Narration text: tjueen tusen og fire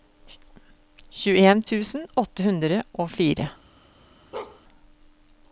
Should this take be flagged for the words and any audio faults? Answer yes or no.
yes